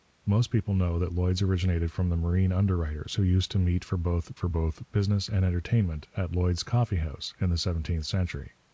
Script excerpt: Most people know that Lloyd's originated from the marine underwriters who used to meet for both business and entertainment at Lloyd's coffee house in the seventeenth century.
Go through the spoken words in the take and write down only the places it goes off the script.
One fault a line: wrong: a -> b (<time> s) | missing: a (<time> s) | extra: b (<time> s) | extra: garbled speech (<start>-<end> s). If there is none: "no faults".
extra: for both (4.4 s)